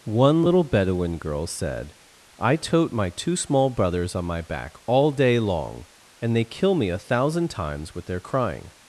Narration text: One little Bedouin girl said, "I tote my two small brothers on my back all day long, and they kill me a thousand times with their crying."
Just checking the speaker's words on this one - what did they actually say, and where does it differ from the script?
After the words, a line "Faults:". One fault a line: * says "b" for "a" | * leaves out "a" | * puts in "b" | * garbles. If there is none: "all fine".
One little Bedouin girl said, "I tote my two small brothers on my back all day long, and they kill me a thousand times with their crying."
Faults:
all fine